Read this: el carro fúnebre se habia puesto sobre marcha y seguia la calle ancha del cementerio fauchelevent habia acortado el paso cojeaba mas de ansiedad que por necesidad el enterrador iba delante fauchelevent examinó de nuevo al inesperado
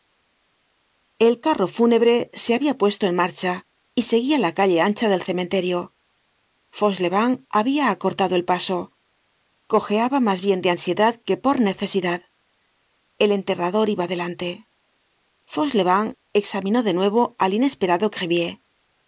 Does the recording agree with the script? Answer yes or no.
no